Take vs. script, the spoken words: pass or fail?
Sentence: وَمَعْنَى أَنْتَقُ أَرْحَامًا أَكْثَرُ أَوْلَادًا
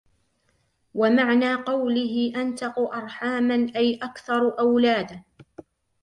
fail